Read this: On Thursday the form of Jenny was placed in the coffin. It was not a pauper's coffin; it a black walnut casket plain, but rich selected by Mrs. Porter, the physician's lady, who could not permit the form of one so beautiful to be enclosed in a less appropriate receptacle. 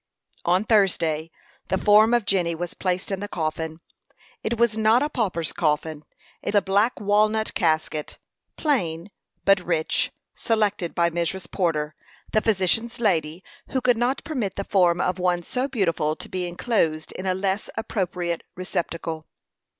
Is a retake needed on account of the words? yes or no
no